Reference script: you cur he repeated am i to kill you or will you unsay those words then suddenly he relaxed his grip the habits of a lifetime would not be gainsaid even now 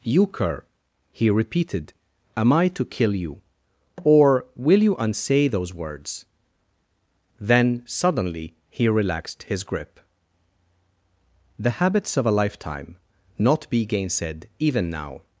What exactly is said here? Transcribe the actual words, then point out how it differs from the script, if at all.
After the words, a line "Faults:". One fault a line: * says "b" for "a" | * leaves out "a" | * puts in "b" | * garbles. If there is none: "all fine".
you cur he repeated am i to kill you or will you unsay those words then suddenly he relaxed his grip the habits of a lifetime not be gainsaid even now
Faults:
* leaves out "would"